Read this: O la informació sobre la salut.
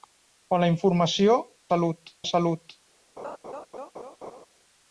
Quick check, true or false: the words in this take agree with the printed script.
false